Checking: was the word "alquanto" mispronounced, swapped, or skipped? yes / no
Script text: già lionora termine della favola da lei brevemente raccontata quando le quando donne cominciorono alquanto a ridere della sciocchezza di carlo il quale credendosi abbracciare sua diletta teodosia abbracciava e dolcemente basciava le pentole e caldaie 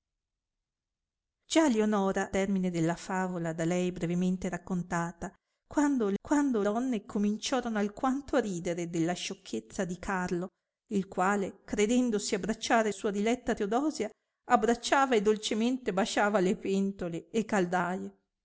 no